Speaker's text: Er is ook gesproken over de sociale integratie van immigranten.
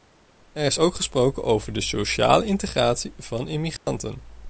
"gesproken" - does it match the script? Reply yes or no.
yes